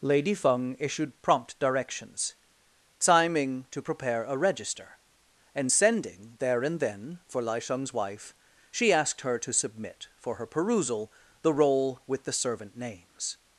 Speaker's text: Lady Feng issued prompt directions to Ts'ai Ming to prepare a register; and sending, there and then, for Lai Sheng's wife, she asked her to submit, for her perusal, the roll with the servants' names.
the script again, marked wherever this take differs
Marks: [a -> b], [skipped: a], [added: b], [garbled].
Lady Feng issued prompt directions [skipped: to] Ts'ai Ming to prepare a register; and sending, there and then, for Lai Sheng's wife, she asked her to submit, for her perusal, the roll with the [servants' -> servant] names.